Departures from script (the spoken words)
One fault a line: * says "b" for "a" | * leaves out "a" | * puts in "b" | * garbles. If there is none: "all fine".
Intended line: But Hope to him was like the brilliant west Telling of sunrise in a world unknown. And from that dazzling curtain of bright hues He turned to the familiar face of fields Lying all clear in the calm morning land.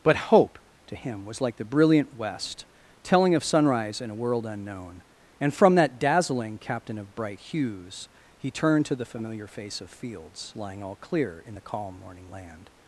* says "captain" for "curtain"